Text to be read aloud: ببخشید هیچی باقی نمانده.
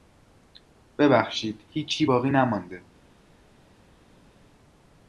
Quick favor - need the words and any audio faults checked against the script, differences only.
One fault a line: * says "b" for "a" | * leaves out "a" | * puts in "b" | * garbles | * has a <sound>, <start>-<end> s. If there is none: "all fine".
all fine